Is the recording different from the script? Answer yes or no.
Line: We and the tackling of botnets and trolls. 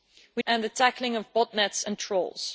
no